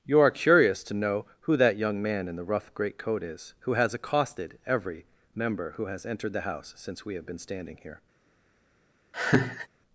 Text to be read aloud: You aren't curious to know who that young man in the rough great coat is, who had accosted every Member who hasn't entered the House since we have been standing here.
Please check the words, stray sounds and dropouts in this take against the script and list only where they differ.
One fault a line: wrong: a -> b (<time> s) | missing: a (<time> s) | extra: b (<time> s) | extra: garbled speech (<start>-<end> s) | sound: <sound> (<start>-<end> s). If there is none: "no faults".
wrong: aren't -> are (0.2 s)
wrong: had -> has (3.7 s)
wrong: hasn't -> has (5.8 s)
sound: laugh (9.1-9.7 s)